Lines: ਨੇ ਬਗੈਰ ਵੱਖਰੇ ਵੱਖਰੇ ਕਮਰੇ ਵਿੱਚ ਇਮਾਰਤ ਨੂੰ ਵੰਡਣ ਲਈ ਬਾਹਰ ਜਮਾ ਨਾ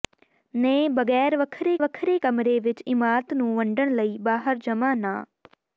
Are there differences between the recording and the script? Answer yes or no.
no